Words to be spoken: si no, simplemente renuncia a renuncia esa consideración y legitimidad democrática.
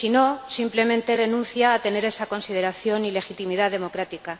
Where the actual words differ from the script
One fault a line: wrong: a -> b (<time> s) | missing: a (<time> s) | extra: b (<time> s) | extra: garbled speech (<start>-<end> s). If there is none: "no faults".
wrong: renuncia -> tener (1.8 s)